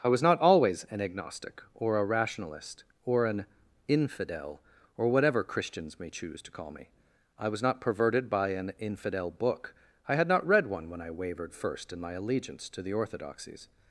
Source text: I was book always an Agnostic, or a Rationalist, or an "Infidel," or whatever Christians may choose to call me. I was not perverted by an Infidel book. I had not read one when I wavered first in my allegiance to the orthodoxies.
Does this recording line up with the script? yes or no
no